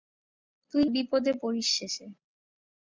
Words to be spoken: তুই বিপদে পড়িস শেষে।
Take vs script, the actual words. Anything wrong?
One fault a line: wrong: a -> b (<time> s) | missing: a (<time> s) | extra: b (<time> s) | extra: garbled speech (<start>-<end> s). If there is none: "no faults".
no faults